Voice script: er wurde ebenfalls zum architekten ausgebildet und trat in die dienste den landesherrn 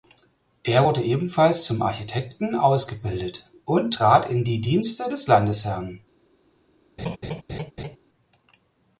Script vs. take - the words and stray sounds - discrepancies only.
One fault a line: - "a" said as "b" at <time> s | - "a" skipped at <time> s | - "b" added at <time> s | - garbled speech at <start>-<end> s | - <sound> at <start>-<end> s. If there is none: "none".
- "den" said as "des" at 5.1 s
- laugh at 7.0-8.0 s